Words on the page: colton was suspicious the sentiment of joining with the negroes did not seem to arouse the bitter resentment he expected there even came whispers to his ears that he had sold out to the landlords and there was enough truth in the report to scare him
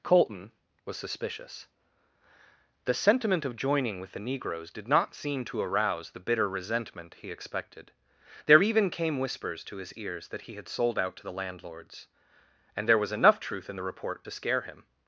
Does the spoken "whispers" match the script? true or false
true